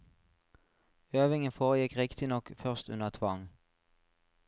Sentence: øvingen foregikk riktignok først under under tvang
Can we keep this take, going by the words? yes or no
no